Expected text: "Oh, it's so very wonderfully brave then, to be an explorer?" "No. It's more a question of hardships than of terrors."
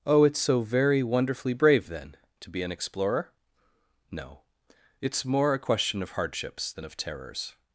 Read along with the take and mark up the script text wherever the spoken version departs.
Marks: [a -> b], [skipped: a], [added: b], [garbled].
"Oh, it's so very wonderfully brave then, to be an explorer?" "No. It's more a question of hardships than of terrors."